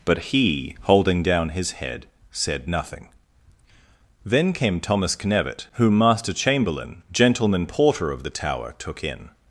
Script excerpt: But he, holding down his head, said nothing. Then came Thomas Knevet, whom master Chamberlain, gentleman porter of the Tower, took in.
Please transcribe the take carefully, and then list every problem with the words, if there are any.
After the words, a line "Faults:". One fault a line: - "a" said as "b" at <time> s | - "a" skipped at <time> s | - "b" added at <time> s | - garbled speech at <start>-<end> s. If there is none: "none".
But he, holding down his head, said nothing. Then came Thomas Knevet, whom master Chamberlain, gentleman porter of the Tower, took in.
Faults:
none